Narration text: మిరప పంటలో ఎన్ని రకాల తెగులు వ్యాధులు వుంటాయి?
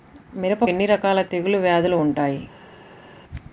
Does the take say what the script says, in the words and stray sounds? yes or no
no